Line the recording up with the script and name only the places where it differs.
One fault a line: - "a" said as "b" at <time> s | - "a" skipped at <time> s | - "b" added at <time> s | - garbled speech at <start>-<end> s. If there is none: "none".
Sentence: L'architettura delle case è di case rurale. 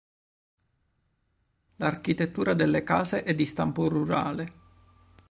- "case" said as "stampo" at 3.4 s